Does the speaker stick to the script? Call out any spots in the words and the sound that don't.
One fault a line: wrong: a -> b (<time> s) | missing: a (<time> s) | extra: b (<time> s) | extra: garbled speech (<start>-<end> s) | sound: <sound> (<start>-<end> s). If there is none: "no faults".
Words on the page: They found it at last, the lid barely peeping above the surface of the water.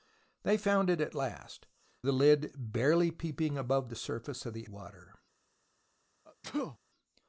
sound: sneeze (6.3-6.8 s)